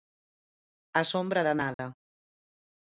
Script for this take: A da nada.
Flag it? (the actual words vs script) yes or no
yes